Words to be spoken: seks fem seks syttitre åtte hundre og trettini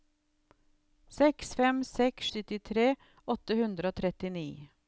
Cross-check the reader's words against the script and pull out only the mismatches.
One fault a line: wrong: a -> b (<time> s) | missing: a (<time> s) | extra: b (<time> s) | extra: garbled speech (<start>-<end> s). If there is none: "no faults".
no faults